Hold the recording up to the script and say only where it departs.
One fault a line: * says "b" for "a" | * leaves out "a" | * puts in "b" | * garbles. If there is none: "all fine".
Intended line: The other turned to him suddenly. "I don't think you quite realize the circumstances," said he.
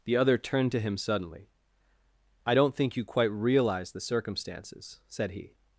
all fine